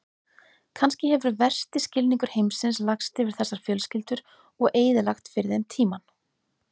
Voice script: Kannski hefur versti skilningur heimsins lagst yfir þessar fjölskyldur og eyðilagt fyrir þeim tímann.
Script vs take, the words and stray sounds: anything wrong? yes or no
no